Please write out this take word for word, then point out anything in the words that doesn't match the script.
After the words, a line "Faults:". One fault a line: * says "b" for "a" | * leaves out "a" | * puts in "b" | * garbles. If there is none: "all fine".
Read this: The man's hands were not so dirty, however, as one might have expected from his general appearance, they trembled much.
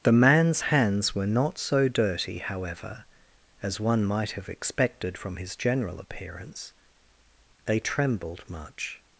The man's hands were not so dirty, however, as one might have expected from his general appearance, they trembled much.
Faults:
all fine